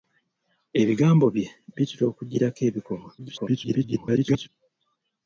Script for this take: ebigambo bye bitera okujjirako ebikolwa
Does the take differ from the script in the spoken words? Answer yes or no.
yes